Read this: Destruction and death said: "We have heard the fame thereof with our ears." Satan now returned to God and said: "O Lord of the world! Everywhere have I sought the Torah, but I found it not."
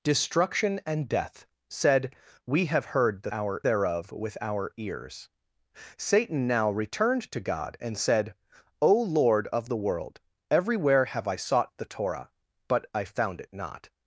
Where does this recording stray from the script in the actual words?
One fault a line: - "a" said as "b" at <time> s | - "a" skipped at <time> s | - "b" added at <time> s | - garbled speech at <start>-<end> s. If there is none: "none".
- "fame" said as "our" at 3.3 s